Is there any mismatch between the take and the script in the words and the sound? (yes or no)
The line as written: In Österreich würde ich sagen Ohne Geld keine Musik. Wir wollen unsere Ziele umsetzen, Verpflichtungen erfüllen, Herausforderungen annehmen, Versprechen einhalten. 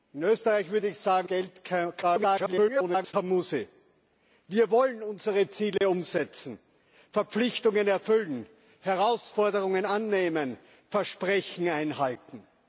yes